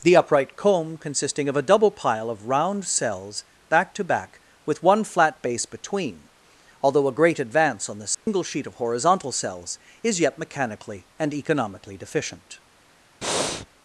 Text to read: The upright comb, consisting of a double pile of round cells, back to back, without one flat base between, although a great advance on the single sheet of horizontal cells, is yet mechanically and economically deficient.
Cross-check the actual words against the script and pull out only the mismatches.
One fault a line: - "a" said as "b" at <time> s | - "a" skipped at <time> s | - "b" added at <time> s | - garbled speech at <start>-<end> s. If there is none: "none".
- "without" said as "with" at 4.7 s